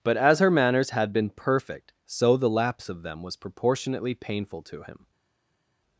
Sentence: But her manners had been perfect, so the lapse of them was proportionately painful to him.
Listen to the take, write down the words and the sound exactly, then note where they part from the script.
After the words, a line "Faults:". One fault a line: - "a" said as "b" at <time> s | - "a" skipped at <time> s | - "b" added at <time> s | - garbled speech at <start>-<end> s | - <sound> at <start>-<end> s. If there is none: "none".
But as her manners had been perfect, so the lapse of them was proportionately painful to him.
Faults:
- "as" added at 0.2 s